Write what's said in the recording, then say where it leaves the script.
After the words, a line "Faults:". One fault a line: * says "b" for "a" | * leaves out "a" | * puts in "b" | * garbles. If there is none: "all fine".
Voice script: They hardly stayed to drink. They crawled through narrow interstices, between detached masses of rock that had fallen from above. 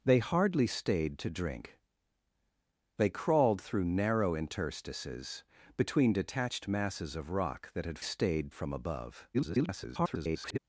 They hardly stayed to drink. They crawled through narrow interstices, between detached masses of rock that had stayed from above. [garbled]
Faults:
* says "stayed" for "fallen"
* garbles